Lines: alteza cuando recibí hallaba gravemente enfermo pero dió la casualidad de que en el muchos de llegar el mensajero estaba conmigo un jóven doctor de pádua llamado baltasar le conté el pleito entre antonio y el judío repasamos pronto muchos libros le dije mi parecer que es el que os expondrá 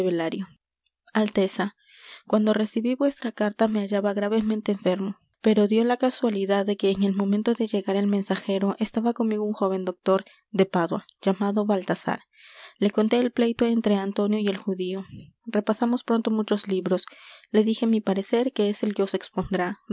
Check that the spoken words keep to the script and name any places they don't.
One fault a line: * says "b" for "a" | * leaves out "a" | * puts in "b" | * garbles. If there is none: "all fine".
* puts in "vuestra carta me"
* says "momento" for "muchos"